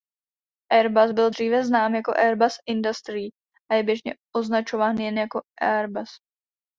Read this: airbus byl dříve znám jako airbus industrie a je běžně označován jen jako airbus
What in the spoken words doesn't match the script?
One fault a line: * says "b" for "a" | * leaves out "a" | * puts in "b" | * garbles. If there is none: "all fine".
all fine